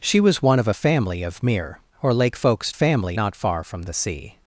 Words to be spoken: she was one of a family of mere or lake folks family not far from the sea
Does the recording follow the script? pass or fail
pass